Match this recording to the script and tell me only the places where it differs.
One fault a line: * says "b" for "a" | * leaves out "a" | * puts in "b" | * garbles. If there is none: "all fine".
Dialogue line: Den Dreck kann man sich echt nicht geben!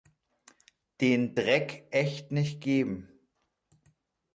* leaves out "kann man sich"